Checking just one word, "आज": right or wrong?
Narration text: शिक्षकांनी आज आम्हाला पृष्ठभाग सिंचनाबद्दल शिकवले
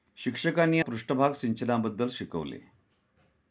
wrong